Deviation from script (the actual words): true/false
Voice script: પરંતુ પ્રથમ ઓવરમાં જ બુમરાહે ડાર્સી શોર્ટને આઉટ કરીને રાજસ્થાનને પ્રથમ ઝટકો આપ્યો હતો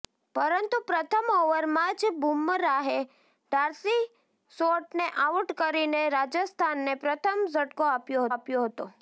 true